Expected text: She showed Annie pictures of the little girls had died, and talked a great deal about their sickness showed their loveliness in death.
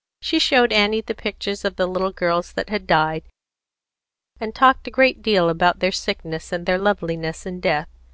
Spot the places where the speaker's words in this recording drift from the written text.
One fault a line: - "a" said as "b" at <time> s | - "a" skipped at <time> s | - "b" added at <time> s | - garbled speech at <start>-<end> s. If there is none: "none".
- "the" added at 1.0 s
- "that" added at 2.5 s
- "showed" said as "and" at 6.5 s